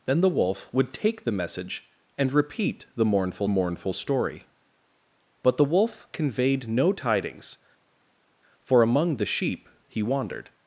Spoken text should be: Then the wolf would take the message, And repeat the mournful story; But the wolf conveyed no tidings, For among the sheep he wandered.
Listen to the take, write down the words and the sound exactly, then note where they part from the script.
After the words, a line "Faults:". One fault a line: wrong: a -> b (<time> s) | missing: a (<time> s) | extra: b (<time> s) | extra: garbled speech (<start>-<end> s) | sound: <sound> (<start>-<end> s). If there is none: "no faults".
Then the wolf would take the message, And repeat the mournful mournful story; But the wolf conveyed no tidings, For among the sheep he wandered.
Faults:
extra: mournful (3.5 s)